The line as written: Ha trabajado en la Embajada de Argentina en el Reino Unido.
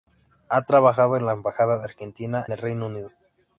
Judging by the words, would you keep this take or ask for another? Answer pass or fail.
fail